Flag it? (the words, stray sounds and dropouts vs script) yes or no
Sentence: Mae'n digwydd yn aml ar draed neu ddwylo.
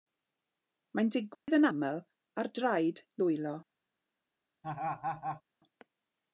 yes